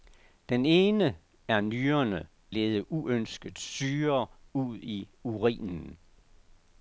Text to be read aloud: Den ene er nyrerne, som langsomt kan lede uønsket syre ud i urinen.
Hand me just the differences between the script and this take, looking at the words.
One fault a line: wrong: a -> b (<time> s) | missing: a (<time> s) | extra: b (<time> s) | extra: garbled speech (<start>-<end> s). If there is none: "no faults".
missing: som langsomt kan (2.3 s)